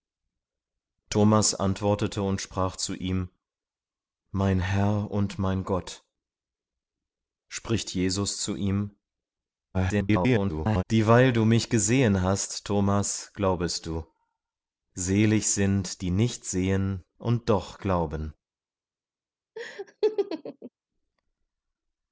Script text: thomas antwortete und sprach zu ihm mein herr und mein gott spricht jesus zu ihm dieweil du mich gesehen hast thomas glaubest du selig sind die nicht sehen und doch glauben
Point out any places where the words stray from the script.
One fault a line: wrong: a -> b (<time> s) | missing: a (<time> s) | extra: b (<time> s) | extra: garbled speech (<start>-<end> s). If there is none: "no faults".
extra: garbled speech (9.7-10.8 s)